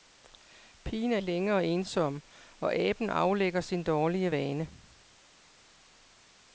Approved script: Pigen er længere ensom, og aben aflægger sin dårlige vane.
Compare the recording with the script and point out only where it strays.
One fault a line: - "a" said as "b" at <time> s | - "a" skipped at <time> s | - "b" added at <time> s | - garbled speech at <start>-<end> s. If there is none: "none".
none